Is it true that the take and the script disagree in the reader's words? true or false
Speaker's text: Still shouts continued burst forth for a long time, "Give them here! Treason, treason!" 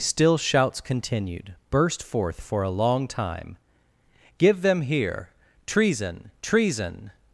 false